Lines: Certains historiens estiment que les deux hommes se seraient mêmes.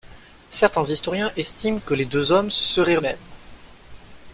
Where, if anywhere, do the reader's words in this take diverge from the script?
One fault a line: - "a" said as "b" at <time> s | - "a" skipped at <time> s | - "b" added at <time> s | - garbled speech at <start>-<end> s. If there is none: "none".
none